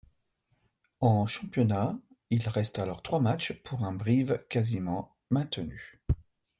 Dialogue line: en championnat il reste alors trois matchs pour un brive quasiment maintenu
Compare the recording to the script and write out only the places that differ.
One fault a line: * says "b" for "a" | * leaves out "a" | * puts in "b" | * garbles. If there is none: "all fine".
all fine